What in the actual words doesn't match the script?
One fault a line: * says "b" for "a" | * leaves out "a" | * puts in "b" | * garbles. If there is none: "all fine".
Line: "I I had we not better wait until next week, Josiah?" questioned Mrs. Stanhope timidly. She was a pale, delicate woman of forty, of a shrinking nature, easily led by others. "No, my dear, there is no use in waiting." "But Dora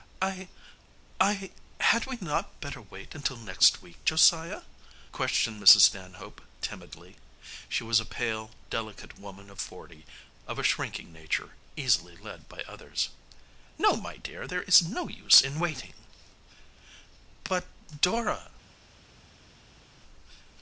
all fine